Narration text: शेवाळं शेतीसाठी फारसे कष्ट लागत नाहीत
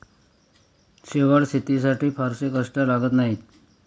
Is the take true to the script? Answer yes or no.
yes